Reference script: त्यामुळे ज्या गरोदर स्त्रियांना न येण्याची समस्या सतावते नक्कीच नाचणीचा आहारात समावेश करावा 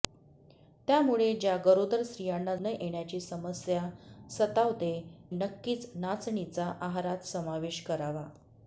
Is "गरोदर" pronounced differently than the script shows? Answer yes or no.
no